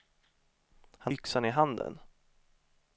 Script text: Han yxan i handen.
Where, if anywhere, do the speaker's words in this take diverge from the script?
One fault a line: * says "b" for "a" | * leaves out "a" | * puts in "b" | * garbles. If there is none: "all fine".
all fine